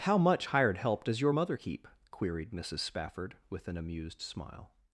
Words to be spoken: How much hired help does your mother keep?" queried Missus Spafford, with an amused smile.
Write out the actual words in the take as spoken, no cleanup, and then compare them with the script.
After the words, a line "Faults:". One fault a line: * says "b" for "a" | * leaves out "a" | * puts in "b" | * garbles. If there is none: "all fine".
How much hired help does your mother keep?" queried Missus Spafford, with an amused smile.
Faults:
all fine